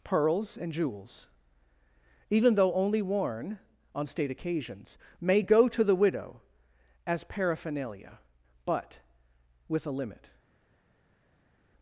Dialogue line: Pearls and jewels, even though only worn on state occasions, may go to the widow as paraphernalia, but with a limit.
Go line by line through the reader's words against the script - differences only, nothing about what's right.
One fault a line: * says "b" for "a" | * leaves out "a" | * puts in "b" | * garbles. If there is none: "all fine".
all fine